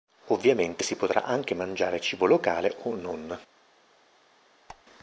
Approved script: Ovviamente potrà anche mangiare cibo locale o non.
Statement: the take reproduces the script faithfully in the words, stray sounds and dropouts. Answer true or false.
false